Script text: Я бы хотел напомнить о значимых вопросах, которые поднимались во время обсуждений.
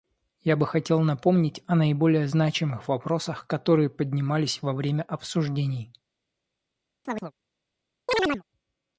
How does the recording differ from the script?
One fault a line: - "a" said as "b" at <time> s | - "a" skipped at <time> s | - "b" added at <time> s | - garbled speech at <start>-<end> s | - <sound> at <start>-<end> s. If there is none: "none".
- "наиболее" added at 1.8 s
- chirp at 7.1-7.3 s
- chirp at 8.1-8.4 s